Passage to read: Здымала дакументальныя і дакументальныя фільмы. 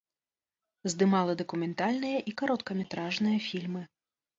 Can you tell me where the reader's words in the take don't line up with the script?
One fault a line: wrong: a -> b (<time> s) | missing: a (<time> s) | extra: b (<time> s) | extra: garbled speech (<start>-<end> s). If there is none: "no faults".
wrong: дакументальныя -> кароткаметражныя (2.4 s)